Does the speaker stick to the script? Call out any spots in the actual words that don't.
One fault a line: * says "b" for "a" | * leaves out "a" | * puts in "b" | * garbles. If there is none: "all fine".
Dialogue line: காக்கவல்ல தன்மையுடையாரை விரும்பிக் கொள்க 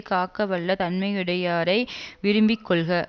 all fine